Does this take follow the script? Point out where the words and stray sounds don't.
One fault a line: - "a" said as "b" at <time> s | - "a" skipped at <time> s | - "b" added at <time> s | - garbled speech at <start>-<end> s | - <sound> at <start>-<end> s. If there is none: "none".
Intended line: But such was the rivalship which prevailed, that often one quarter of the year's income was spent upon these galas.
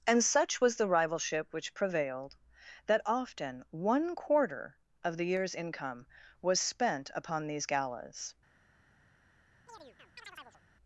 - "But" said as "And" at 0.1 s
- chirp at 9.7-10.6 s